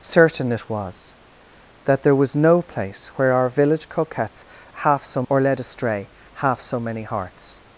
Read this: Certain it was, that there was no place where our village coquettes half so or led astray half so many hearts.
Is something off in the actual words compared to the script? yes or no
no